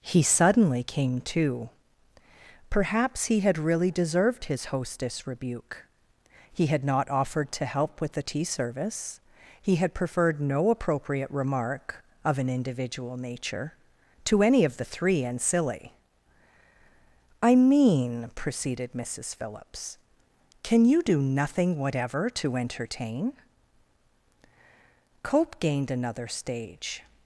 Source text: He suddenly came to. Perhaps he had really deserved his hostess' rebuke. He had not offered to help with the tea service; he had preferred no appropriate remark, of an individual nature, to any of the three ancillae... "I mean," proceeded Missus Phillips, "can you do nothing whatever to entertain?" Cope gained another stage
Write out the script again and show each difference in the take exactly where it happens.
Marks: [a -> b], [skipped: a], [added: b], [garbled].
He suddenly came to. Perhaps he had really deserved his hostess' rebuke. He had not offered to help with the tea service; he had preferred no appropriate remark, of an individual nature, to any of the three ancillae... "I mean," proceeded Missus Phillips, "can you do nothing whatever to entertain?" Cope gained another stage